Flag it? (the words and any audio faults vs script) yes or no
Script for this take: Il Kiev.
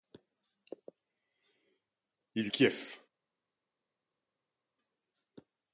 no